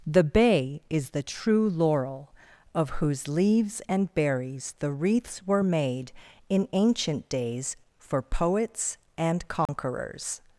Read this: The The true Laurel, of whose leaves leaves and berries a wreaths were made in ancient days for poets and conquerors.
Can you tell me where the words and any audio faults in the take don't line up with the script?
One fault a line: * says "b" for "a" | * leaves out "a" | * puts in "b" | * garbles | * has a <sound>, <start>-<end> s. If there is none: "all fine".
* puts in "Bay is"
* leaves out "leaves"
* says "the" for "a"
* has a dropout, 9.7-9.7 s